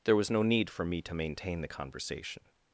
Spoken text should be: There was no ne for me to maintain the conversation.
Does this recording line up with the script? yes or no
no